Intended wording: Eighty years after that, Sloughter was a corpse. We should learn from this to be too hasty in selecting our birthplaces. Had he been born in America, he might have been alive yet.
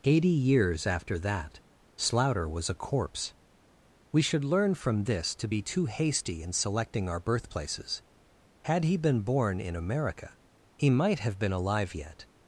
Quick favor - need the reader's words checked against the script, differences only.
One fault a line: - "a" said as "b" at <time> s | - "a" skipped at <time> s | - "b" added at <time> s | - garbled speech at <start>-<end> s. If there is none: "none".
none